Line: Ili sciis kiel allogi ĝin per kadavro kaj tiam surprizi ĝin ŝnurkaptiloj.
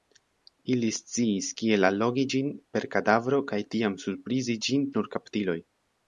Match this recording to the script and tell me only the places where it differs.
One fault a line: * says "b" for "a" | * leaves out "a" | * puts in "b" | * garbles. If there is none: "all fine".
all fine